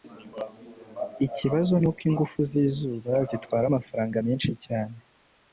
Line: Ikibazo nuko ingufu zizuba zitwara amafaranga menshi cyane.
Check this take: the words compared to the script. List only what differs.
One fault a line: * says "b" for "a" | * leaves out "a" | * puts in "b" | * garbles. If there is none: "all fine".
all fine